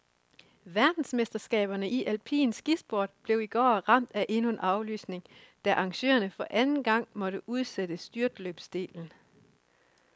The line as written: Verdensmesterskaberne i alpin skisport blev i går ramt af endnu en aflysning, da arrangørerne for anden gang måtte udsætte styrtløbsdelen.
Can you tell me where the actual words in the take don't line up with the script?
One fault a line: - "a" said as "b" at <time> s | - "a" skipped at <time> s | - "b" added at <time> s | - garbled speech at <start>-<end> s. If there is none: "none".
none